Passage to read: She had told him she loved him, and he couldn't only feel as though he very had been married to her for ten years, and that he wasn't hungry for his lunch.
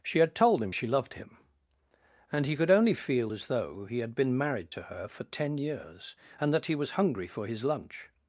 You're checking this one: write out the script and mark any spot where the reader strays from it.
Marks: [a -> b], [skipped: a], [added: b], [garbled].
She had told him she loved him, and he [couldn't -> could] only feel as though he [skipped: very] had been married to her for ten years, and that he [wasn't -> was] hungry for his lunch.